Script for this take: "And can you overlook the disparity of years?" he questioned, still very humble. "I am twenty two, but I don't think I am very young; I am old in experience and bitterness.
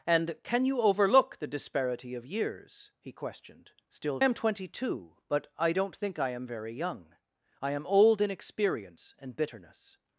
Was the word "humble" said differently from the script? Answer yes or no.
yes